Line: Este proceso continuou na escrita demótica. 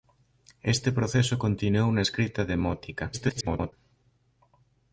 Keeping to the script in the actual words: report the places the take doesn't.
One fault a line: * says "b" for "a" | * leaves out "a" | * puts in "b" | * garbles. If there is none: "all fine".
* garbles